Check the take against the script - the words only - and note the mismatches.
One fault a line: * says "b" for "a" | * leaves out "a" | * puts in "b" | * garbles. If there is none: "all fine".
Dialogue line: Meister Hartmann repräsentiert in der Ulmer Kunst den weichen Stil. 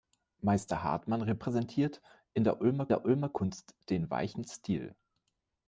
* puts in "der Ulmer"